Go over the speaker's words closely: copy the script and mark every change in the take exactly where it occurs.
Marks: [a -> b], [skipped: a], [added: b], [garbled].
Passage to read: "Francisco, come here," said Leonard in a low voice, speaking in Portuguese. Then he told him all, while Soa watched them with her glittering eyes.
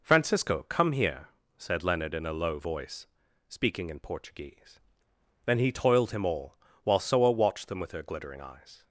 "Francisco, come here," said Leonard in a low voice, speaking in Portuguese. Then he [told -> toiled] him all, while Soa watched them with her glittering eyes.